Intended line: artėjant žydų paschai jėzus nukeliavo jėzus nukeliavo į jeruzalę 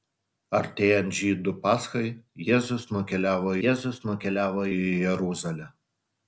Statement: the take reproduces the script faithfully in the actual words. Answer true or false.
true